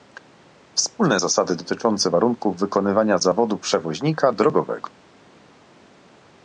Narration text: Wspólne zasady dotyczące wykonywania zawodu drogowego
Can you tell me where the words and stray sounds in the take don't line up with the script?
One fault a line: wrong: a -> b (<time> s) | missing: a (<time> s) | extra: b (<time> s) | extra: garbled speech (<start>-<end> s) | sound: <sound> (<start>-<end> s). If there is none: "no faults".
extra: warunków (2.1 s)
extra: przewoźnika (3.6 s)